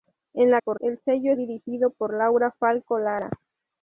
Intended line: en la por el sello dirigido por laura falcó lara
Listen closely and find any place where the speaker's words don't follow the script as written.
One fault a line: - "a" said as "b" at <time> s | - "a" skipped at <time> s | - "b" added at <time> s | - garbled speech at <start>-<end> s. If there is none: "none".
none